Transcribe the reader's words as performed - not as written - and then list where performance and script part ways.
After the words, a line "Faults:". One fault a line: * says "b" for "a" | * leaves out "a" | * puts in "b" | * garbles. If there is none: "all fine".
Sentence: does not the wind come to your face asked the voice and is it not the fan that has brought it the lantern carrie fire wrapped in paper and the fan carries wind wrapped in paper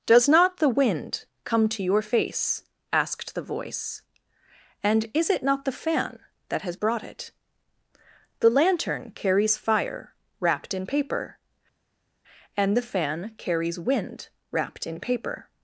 does not the wind come to your face asked the voice and is it not the fan that has brought it the lantern carries fire wrapped in paper and the fan carries wind wrapped in paper
Faults:
* says "carries" for "carrie"